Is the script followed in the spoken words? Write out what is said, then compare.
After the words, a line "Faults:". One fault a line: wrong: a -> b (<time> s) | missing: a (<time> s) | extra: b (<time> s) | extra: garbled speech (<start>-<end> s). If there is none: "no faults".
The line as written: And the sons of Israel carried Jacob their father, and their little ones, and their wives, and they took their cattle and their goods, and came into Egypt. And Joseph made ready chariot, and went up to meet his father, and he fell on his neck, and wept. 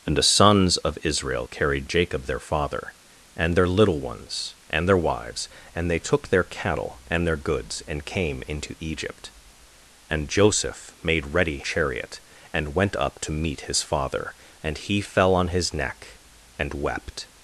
And the sons of Israel carried Jacob their father, and their little ones, and their wives, and they took their cattle and their goods, and came into Egypt. And Joseph made ready chariot, and went up to meet his father, and he fell on his neck, and wept.
Faults:
no faults